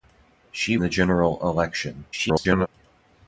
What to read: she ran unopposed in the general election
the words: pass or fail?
fail